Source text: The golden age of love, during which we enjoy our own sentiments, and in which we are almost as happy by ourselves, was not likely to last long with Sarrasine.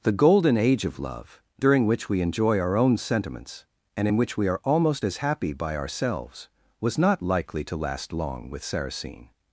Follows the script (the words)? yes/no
yes